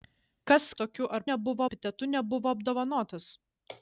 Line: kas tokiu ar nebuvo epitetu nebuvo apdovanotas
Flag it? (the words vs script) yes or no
no